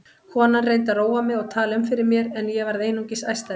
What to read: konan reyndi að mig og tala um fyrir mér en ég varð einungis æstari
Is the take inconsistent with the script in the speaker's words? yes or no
yes